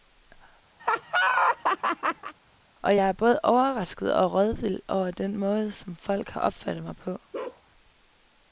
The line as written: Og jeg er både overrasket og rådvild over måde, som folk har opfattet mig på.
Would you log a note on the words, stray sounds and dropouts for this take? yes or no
yes